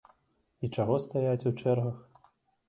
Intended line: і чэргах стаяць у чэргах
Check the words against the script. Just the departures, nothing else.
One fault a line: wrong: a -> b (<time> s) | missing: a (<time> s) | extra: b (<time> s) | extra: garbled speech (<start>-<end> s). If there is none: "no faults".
wrong: чэргах -> чаго (0.8 s)